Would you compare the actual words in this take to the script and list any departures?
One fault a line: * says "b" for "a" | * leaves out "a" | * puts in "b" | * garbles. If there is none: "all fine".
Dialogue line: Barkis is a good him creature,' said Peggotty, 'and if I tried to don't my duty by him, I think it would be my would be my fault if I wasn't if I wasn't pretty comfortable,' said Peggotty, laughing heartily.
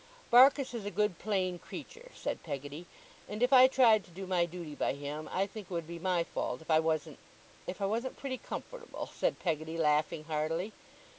* says "plain" for "him"
* says "do" for "don't"
* leaves out "would be my"